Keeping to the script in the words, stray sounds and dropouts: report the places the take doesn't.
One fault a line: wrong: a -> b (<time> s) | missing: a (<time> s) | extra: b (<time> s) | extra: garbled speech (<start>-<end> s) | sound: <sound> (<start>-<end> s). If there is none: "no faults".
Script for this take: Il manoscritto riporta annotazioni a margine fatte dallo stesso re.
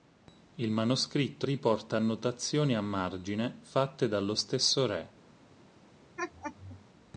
sound: laugh (6.2-6.8 s)